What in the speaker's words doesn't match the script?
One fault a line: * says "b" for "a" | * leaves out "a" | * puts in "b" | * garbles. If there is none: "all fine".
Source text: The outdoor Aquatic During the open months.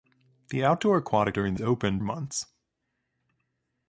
all fine